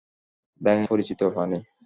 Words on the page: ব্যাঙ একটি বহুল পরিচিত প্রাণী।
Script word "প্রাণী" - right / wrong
right